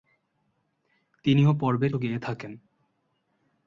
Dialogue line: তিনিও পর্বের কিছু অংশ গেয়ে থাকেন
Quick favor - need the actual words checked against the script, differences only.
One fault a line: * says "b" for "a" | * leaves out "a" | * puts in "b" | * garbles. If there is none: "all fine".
* leaves out "কিছু অংশ"